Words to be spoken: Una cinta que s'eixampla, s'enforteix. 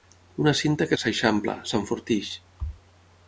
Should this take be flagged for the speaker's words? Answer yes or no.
no